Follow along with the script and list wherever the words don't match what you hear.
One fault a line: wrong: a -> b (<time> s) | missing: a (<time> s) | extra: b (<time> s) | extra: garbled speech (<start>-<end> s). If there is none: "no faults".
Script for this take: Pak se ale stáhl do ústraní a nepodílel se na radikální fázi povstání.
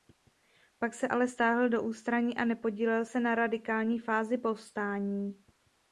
no faults